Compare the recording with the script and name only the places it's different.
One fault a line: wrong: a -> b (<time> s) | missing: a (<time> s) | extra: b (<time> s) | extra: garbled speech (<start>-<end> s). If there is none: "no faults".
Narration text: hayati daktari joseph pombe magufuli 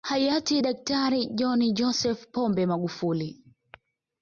extra: john (1.4 s)